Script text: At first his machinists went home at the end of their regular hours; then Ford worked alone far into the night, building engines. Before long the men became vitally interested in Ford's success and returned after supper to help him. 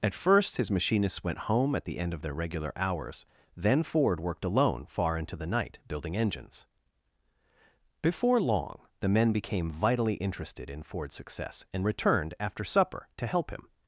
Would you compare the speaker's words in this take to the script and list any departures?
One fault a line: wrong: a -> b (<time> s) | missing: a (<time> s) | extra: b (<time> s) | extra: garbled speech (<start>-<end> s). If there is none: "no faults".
no faults